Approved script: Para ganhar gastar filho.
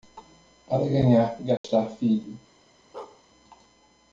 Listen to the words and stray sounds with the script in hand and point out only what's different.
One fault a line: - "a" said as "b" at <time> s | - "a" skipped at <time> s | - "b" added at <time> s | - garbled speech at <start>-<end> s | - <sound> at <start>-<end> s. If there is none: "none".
- dropout at 1.6-1.6 s
- bark at 2.9-3.2 s